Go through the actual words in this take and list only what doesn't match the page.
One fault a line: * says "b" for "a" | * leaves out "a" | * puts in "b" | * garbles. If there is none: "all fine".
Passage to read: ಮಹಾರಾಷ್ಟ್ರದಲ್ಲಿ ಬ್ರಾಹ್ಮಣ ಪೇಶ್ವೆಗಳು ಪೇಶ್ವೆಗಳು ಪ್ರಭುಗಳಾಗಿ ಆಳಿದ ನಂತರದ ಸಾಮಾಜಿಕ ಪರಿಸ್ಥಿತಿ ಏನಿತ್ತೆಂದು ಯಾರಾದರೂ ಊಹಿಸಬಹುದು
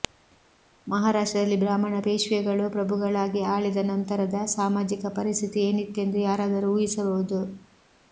* leaves out "ಪೇಶ್ವೆಗಳು"